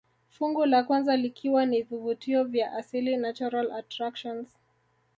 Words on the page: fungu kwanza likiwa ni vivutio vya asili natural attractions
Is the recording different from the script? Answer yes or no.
yes